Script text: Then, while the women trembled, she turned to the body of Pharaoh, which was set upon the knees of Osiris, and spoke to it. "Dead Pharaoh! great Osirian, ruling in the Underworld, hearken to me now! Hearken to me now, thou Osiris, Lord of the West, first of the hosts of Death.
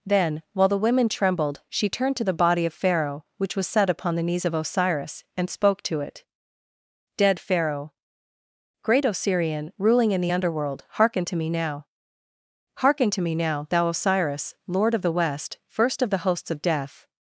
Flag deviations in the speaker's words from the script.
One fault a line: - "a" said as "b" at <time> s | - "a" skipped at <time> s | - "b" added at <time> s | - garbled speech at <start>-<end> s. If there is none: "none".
none